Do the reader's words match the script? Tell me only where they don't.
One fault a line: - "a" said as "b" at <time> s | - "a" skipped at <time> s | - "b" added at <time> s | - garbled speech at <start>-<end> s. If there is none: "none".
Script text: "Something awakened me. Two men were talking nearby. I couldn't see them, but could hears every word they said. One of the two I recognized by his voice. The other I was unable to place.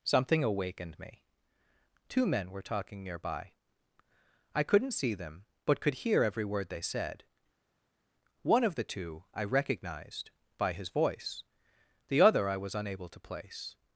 - "hears" said as "hear" at 5.9 s